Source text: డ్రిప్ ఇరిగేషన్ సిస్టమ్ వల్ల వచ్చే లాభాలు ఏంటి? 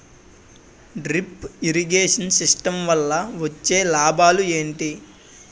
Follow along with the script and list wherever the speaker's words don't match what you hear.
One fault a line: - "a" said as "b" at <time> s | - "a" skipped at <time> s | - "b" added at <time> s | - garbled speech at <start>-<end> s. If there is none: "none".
none